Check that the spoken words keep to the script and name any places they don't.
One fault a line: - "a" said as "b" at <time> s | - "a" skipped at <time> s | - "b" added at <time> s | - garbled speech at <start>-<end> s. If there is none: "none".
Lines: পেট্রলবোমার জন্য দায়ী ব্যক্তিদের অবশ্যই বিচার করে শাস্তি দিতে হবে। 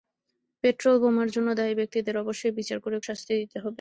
none